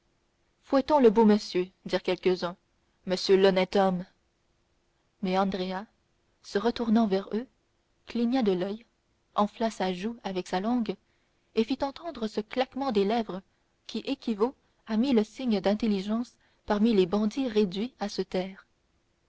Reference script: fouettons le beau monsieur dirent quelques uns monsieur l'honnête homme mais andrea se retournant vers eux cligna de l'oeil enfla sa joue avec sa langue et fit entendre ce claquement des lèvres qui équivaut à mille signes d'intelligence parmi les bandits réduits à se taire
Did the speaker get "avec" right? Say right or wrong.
right